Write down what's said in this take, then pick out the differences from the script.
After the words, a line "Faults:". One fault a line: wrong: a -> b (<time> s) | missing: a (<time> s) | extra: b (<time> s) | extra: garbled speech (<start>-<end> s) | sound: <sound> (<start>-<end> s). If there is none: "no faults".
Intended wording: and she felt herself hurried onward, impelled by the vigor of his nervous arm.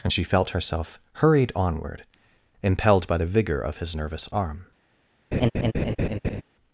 and she felt herself hurried onward, impelled by the vigor of his nervous arm.
Faults:
sound: laugh (5.3-6.4 s)